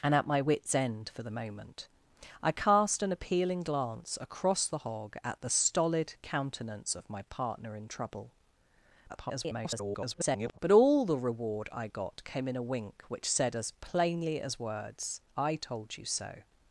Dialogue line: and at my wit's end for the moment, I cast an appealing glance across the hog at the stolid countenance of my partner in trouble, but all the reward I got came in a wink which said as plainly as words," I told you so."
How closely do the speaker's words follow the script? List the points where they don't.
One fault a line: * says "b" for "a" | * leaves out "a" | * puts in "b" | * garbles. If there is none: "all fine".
* garbles